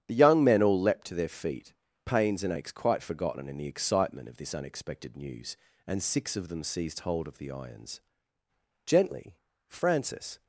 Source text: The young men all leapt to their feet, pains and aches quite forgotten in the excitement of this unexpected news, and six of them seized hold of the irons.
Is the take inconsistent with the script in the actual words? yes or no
yes